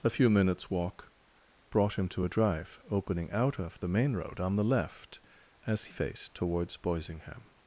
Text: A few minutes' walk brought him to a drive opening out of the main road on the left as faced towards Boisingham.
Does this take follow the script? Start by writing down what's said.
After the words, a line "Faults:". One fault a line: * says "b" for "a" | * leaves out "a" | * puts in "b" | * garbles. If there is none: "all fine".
A few minutes' walk brought him to a drive opening out of the main road on the left as faced towards Boisingham.
Faults:
all fine